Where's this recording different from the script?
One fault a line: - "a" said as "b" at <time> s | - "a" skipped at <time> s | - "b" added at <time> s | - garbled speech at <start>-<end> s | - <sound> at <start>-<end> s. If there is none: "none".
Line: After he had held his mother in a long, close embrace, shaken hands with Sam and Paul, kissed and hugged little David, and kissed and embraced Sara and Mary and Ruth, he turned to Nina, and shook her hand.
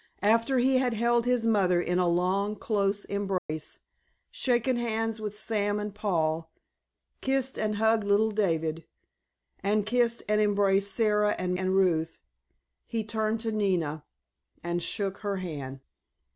- dropout at 3.4-3.5 s
- "Mary" skipped at 11.6 s